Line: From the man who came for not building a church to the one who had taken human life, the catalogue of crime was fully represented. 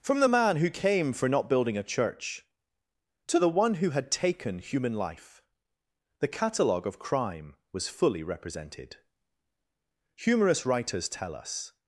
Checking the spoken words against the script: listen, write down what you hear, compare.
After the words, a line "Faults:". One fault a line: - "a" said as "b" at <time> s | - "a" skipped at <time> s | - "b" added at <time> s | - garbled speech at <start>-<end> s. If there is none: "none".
From the man who came for not building a church to the one who had taken human life, the catalogue of crime was fully represented. Humorous writers tell us
Faults:
- "Humorous writers tell us" added at 10.1 s